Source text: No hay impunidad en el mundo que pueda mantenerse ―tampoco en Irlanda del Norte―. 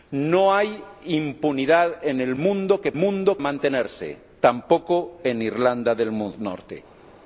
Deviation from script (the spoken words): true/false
true